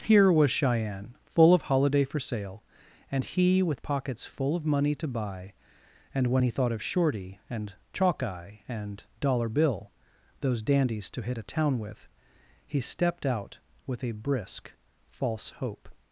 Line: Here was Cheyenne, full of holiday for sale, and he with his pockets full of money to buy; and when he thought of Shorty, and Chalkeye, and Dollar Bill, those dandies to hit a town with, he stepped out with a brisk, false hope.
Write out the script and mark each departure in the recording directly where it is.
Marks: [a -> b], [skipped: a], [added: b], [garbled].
Here was Cheyenne, full of holiday for sale, and he with [skipped: his] pockets full of money to buy; and when he thought of Shorty, and Chalkeye, and Dollar Bill, those dandies to hit a town with, he stepped out with a brisk, false hope.